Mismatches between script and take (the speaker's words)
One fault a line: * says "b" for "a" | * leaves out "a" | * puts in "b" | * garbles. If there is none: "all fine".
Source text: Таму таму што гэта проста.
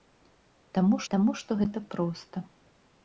all fine